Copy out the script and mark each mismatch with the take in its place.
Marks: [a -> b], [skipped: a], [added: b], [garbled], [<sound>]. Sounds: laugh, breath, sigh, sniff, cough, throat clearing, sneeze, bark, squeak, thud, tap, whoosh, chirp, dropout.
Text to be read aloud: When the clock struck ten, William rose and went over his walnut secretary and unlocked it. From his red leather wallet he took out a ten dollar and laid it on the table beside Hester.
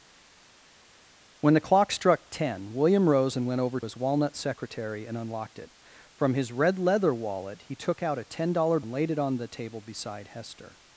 When the clock struck ten, William rose and went over his walnut secretary and unlocked it. From his red leather wallet he took out a ten dollar and laid it on the table beside Hester.